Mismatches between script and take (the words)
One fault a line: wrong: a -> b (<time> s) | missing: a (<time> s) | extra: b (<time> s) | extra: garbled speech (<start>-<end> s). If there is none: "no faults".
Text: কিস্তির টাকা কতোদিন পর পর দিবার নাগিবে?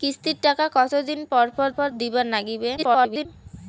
extra: পর (1.8 s)
extra: garbled speech (2.8-3.3 s)